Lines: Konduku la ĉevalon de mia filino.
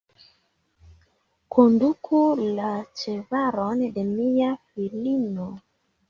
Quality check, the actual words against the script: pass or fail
pass